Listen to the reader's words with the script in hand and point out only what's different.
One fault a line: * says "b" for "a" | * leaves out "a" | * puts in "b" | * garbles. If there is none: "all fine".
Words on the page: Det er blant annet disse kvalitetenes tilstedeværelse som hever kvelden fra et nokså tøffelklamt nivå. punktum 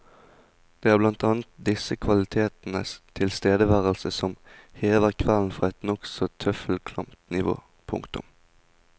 all fine